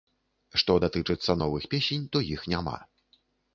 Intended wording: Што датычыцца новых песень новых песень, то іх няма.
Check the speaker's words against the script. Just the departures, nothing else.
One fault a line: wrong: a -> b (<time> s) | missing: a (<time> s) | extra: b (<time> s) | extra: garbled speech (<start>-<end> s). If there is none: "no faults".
missing: новых песень (2.0 s)